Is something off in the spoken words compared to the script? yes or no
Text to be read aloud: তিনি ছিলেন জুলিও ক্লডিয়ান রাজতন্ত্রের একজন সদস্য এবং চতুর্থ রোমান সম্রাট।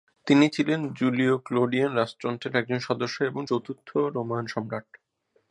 no